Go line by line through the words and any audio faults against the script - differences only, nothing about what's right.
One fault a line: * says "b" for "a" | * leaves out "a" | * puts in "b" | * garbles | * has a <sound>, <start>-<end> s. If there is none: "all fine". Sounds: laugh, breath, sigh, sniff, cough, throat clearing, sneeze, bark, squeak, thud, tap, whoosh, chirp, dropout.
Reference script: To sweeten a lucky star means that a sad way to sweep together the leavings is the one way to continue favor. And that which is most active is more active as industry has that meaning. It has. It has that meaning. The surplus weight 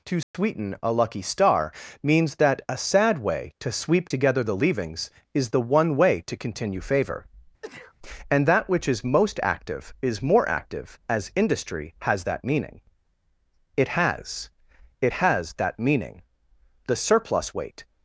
* has a dropout, 0.2-0.3 s
* has a sneeze, 7.6-7.9 s